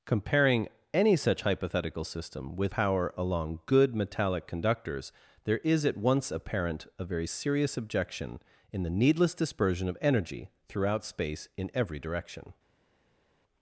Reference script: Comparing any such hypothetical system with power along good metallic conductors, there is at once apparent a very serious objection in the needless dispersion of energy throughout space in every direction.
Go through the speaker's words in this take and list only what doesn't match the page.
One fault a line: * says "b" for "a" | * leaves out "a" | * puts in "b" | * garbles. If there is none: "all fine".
all fine